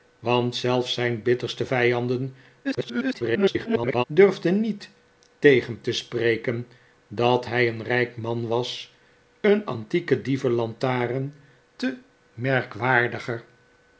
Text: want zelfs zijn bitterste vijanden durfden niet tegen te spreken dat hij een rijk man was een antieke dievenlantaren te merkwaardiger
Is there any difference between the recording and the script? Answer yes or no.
yes